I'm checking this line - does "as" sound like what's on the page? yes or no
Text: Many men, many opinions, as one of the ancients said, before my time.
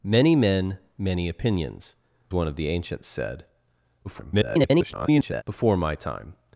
no